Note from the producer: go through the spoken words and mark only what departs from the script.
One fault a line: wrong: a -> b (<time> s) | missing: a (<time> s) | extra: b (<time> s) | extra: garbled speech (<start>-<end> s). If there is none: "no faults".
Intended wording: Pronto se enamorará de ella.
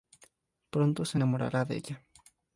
no faults